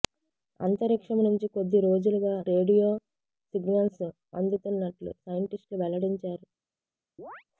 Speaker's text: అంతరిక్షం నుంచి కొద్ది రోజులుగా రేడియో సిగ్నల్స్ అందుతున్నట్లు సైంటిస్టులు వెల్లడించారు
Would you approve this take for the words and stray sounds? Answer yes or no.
no